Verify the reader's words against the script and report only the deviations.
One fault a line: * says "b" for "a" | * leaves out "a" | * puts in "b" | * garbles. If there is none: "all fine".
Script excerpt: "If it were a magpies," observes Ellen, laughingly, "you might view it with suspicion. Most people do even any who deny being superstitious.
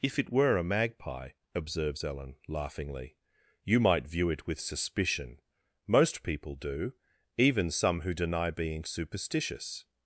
* says "magpie" for "magpies"
* says "some" for "any"